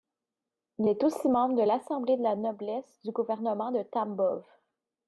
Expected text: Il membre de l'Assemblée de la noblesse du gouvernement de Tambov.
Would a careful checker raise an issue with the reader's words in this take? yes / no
yes